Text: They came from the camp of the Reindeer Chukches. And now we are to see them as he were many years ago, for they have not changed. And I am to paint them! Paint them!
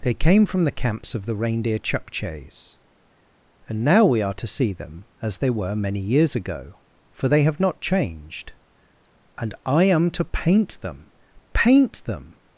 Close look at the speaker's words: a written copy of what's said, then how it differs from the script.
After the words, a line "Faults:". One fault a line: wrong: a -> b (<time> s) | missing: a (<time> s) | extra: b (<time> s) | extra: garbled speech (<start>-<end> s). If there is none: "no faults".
They came from the camps of the Reindeer Chukches. And now we are to see them as they were many years ago, for they have not changed. And I am to paint them! Paint them!
Faults:
wrong: camp -> camps (0.7 s)
wrong: he -> they (5.4 s)